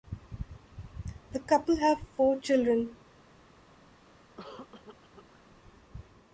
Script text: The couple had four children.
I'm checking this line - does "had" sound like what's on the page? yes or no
no